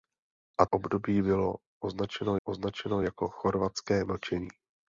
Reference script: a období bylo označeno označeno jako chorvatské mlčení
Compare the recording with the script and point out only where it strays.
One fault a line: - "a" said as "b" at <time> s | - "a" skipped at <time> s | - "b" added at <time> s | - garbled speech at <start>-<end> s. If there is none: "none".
none